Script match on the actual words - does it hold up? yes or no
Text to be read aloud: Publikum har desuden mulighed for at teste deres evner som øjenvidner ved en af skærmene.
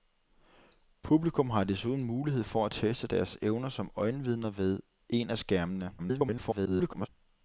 no